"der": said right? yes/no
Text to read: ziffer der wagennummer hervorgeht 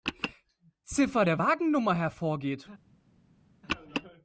yes